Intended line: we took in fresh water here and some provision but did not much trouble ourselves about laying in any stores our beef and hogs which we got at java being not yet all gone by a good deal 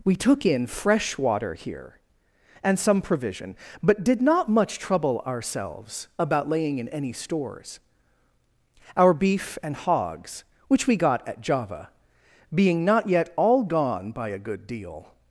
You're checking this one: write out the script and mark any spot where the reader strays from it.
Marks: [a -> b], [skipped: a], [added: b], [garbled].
we took in fresh water here and some provision but did not much trouble ourselves about laying in any stores our beef and hogs which we got at java being not yet all gone by a good deal